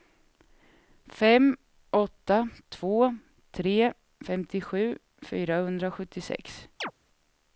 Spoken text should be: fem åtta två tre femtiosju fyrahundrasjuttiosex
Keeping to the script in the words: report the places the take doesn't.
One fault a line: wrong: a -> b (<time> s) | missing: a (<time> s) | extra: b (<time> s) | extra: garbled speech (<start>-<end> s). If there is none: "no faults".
no faults